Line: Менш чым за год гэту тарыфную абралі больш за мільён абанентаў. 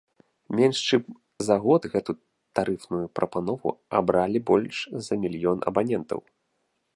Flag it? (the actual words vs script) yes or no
yes